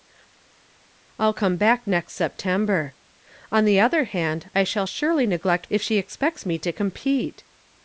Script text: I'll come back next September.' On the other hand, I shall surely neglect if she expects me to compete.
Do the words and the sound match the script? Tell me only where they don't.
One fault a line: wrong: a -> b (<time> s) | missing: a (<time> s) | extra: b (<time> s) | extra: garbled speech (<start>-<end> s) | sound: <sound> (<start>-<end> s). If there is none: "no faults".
no faults